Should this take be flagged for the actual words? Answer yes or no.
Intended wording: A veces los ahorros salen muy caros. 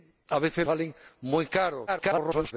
yes